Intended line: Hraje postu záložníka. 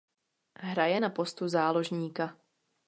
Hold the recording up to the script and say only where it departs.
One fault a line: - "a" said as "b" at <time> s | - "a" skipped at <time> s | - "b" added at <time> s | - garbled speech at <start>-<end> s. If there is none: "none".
- "na" added at 1.0 s